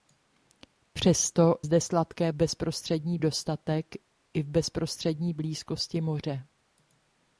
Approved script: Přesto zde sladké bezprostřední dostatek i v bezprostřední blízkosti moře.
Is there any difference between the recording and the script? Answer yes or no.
no